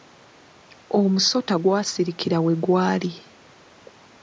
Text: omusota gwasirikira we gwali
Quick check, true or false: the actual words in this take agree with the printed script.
true